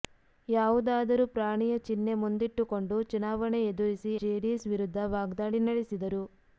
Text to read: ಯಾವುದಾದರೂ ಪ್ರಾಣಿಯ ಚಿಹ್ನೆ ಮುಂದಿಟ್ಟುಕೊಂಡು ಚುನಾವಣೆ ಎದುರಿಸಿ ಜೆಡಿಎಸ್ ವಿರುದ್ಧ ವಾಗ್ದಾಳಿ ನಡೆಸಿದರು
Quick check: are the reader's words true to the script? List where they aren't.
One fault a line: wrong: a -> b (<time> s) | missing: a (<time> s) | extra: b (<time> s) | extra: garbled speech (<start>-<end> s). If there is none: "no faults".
no faults